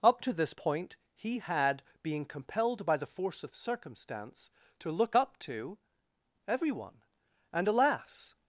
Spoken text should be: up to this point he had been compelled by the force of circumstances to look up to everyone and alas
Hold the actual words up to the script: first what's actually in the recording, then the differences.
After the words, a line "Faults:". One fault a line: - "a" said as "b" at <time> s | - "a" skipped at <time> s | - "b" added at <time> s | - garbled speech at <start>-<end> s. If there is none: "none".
up to this point he had being compelled by the force of circumstance to look up to everyone and alas
Faults:
- "been" said as "being" at 2.0 s
- "circumstances" said as "circumstance" at 3.6 s